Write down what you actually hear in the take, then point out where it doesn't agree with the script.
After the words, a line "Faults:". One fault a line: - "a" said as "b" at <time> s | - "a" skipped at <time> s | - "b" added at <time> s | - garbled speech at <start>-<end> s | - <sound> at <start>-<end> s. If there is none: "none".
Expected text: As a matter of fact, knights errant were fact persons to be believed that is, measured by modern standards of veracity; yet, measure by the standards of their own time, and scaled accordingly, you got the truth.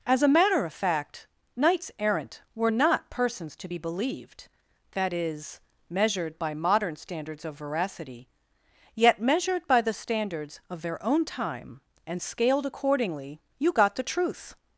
As a matter of fact, knights errant were not persons to be believed that is, measured by modern standards of veracity; yet, measured by the standards of their own time, and scaled accordingly, you got the truth.
Faults:
- "fact" said as "not" at 2.7 s
- "measure" said as "measured" at 9.2 s